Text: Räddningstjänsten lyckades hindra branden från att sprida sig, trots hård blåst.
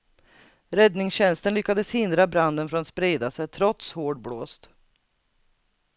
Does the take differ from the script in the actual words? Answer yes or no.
no